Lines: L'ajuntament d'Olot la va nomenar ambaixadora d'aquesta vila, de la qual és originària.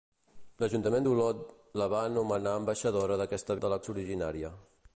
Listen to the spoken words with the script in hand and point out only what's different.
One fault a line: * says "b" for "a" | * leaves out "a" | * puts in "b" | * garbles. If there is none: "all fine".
* leaves out "vila"
* leaves out "qual"